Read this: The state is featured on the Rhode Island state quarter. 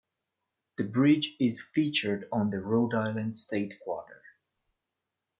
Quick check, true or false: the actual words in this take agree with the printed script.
false